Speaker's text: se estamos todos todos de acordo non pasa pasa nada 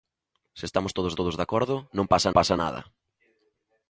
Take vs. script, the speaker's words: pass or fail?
pass